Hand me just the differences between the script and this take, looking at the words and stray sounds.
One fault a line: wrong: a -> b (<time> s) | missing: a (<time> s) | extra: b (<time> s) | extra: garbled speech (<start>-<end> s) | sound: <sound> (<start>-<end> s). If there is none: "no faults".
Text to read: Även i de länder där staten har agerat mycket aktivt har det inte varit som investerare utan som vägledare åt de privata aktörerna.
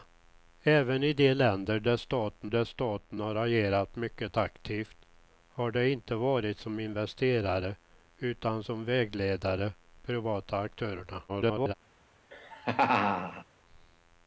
extra: där staten (2.5 s)
missing: åt de (9.7 s)
extra: garbled speech (11.3-11.7 s)
sound: laugh (12.3-13.4 s)